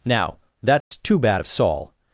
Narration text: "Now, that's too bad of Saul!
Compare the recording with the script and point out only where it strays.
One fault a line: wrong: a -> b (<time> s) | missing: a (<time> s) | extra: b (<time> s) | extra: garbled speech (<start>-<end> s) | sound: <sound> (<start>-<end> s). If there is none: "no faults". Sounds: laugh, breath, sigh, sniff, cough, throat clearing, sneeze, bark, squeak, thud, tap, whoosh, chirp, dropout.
sound: dropout (0.8-0.9 s)